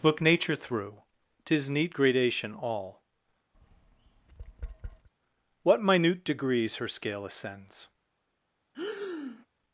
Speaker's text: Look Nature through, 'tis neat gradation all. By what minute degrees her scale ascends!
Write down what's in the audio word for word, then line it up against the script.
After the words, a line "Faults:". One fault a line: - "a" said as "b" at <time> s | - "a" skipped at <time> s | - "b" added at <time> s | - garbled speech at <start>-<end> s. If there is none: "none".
Look Nature through, 'tis neat gradation all. what minute degrees her scale ascends!
Faults:
- "By" skipped at 3.0 s